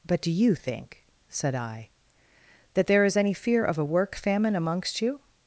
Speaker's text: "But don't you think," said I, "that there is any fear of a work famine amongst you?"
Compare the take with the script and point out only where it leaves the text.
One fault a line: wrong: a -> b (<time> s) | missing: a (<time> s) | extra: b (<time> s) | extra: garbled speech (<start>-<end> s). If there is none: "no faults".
wrong: don't -> do (0.2 s)